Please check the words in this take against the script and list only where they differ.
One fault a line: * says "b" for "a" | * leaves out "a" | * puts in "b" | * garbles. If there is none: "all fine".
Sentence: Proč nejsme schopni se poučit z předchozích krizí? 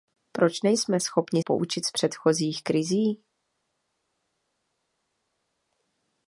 * leaves out "se"